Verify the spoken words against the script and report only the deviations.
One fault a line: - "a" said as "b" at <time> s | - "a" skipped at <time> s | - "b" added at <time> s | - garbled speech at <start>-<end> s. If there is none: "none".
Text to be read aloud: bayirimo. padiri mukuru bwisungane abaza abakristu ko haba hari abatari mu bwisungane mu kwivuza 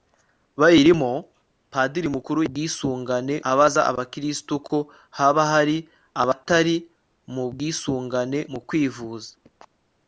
none